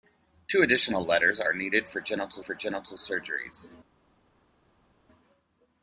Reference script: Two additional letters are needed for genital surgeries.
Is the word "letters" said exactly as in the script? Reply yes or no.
yes